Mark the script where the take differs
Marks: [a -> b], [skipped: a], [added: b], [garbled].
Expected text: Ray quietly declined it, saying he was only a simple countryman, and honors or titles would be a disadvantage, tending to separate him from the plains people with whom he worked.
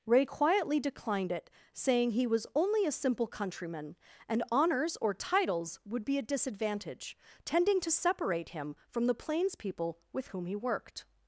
Ray quietly declined it, saying he was only a simple countryman, and honors or titles would be a disadvantage, tending to separate him from the plains people with whom he worked.